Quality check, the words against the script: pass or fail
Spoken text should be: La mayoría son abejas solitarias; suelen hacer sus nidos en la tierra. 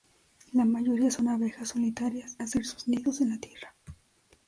fail